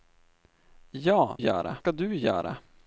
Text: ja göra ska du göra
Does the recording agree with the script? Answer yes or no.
yes